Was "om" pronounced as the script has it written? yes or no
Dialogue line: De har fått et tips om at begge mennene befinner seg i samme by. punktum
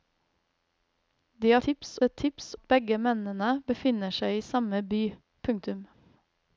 no